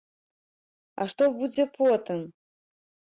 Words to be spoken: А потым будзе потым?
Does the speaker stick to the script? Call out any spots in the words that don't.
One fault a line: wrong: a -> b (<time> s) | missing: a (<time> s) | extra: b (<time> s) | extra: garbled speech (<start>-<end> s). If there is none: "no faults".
wrong: потым -> што (1.1 s)